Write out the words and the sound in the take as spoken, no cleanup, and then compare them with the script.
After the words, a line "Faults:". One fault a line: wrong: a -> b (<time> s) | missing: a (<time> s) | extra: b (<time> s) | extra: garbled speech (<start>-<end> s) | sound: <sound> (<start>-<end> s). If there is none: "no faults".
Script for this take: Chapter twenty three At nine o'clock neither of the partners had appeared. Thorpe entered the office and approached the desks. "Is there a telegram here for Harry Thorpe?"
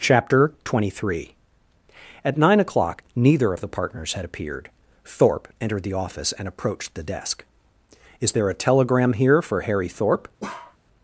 Chapter twenty three At nine o'clock neither of the partners had appeared. Thorpe entered the office and approached the desk. "Is there a telegram here for Harry Thorpe?"
Faults:
wrong: desks -> desk (7.0 s)
sound: bark (10.4-10.8 s)